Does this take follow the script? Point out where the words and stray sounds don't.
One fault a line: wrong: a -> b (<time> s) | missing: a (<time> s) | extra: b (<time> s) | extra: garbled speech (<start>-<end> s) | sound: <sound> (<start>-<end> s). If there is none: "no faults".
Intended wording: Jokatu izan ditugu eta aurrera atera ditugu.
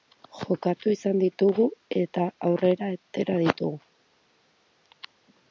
no faults